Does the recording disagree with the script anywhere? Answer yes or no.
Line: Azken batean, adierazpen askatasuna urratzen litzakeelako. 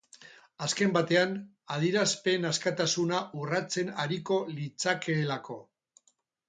yes